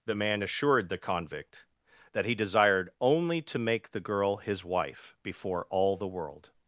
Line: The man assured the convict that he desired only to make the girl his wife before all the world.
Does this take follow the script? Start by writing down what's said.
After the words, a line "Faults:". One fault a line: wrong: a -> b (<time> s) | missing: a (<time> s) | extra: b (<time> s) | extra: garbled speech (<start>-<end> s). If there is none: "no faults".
The man assured the convict that he desired only to make the girl his wife before all the world.
Faults:
no faults